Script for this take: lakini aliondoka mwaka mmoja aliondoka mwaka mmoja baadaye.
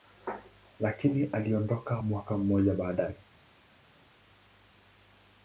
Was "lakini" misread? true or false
false